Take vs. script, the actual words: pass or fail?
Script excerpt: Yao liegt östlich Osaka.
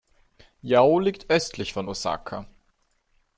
fail